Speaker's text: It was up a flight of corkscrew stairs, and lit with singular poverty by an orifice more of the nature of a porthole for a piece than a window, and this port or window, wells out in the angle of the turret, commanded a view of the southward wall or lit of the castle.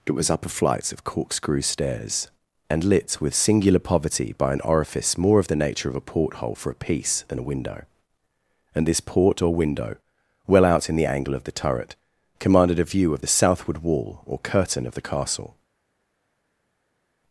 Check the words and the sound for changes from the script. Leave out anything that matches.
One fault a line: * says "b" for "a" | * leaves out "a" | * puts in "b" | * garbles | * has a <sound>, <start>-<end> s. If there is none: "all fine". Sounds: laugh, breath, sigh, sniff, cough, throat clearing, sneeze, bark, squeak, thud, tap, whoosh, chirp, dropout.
* says "well" for "wells"
* says "curtain" for "lit"